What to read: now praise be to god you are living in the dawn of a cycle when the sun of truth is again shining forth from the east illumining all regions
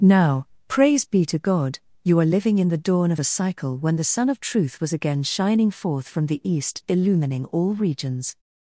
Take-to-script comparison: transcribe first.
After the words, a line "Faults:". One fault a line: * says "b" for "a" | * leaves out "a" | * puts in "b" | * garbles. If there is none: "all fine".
now praise be to god you are living in the dawn of a cycle when the sun of truth was again shining forth from the east illumining all regions
Faults:
* says "was" for "is"